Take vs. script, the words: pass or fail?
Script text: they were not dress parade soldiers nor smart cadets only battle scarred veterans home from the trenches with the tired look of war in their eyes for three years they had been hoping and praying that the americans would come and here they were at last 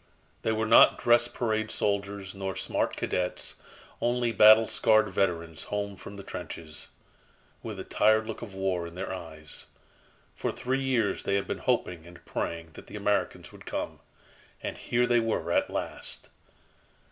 pass